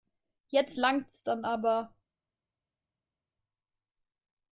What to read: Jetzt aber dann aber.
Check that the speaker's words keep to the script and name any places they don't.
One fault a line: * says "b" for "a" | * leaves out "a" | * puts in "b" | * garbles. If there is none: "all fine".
* says "langt's" for "aber"